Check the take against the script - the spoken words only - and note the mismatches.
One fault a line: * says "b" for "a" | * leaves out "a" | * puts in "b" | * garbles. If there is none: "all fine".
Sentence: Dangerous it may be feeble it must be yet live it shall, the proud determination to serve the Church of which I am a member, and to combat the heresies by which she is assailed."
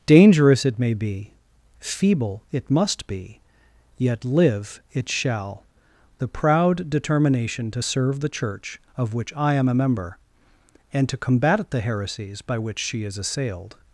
all fine